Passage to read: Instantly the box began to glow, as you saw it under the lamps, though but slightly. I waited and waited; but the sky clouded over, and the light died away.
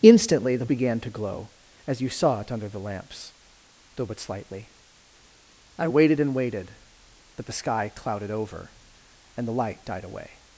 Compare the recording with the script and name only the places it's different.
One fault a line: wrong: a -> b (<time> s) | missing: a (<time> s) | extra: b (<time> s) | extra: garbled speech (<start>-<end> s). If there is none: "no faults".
missing: box (0.7 s)